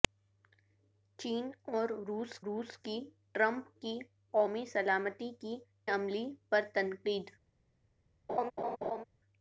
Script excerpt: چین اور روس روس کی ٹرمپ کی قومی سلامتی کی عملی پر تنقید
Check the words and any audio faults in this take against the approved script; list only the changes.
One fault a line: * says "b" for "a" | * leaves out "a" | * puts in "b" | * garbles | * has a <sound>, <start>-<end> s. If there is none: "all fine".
* has a laugh, 8.3-9.0 s